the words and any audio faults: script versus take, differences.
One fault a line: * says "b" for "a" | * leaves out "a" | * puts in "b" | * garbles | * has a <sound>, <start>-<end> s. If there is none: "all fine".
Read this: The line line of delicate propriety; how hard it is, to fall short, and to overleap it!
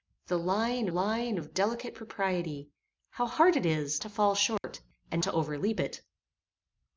* has a dropout, 4.6-4.6 s